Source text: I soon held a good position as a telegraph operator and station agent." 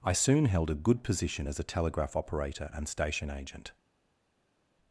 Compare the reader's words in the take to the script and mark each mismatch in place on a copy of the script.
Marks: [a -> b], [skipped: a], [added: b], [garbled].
I soon held a good position as a telegraph operator and station agent."